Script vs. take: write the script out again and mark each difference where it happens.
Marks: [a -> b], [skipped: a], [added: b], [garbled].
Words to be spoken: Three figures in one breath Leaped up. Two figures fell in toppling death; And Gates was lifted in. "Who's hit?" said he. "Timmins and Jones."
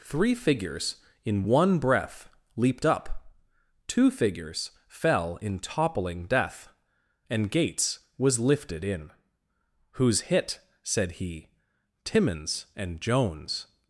Three figures in one breath Leaped up. Two figures fell in toppling death; And Gates was lifted in. "Who's hit?" said he. "Timmins and Jones."